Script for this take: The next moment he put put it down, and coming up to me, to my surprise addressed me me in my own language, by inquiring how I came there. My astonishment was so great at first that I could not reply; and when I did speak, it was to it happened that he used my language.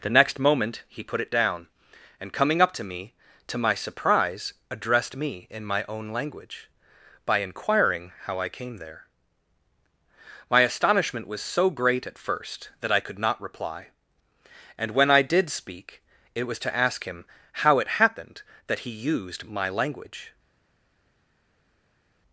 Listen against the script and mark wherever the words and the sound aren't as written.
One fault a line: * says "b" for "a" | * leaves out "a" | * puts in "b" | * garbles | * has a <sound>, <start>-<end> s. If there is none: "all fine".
* leaves out "put"
* leaves out "me"
* puts in "ask him how"